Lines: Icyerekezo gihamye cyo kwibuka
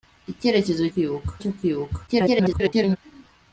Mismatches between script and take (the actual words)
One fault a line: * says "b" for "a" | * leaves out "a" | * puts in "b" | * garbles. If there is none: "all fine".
* says "kwibuka" for "gihamye"
* garbles